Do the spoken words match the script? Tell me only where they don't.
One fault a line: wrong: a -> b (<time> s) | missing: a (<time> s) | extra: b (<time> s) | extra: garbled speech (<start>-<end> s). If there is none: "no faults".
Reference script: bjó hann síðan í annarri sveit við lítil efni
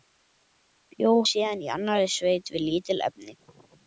missing: hann (1.1 s)